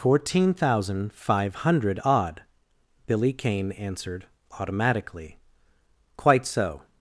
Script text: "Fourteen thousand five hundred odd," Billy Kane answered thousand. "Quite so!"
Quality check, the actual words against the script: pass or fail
fail